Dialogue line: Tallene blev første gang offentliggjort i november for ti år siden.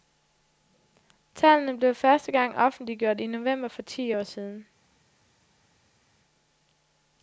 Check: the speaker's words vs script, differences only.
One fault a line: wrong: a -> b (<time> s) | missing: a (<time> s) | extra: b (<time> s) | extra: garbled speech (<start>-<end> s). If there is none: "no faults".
no faults